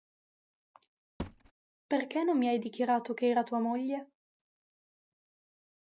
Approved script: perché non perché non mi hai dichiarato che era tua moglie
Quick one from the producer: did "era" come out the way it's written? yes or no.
yes